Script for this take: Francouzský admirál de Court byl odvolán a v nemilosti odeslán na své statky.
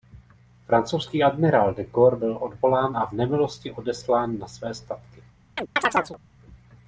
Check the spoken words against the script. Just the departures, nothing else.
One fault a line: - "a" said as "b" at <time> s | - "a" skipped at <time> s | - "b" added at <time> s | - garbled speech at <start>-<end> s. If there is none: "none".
none